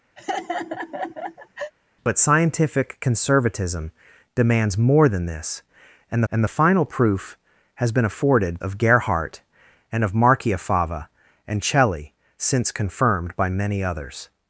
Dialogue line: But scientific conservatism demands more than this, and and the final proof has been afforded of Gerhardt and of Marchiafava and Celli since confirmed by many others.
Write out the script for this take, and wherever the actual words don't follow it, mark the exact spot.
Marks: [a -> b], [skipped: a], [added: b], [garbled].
But scientific conservatism demands more than this, and and the final proof has been afforded of Gerhardt and of Marchiafava and Celli since confirmed by many others.